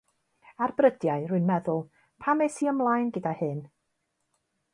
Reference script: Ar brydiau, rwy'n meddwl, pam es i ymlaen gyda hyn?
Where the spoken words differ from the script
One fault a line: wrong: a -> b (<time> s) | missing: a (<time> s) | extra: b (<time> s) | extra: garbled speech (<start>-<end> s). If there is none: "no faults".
no faults